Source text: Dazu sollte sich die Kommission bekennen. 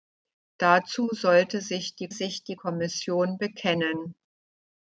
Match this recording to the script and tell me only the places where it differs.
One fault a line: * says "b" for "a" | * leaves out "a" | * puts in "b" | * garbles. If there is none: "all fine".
* puts in "sich die"